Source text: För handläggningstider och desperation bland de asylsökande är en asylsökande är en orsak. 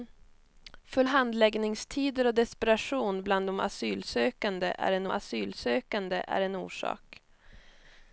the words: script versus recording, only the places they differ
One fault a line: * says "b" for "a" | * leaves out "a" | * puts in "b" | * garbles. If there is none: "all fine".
all fine